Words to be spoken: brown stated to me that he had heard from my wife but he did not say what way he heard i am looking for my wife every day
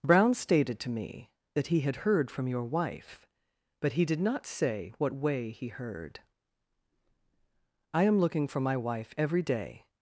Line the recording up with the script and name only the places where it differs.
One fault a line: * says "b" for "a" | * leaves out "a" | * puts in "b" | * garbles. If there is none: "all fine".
* says "your" for "my"